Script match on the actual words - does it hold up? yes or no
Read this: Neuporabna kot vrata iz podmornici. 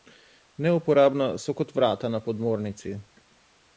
no